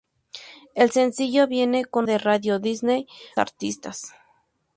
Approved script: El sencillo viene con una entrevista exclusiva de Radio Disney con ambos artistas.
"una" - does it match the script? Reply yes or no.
no